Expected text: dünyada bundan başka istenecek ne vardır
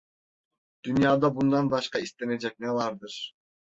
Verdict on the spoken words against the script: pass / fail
pass